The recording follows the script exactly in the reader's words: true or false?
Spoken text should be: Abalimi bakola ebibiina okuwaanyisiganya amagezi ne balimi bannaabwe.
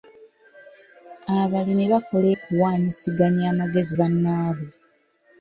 false